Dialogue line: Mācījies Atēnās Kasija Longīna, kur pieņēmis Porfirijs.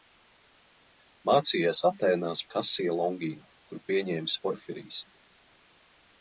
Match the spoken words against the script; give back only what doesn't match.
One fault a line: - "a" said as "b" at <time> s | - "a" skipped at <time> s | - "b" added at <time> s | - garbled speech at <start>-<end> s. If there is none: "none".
none